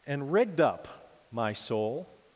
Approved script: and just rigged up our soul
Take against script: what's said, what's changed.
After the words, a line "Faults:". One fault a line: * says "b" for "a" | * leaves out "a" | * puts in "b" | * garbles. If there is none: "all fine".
and rigged up my soul
Faults:
* leaves out "just"
* says "my" for "our"